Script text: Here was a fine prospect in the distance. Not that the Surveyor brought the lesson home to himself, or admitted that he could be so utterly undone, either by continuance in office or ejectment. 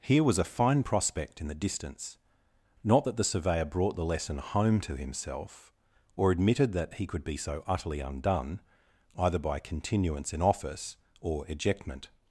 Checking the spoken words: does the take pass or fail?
pass